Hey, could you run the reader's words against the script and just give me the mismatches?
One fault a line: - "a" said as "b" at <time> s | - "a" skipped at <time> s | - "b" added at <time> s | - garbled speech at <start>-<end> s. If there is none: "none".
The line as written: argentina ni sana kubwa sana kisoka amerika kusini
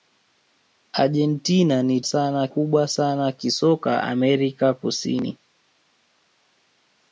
none